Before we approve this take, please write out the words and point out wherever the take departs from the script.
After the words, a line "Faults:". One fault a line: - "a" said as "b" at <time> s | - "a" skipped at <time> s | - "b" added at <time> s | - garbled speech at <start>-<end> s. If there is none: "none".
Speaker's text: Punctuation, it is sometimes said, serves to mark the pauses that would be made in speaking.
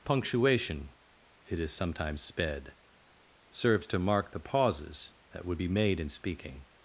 Punctuation, it is sometimes sped, serves to mark the pauses that would be made in speaking.
Faults:
- "said" said as "sped" at 2.2 s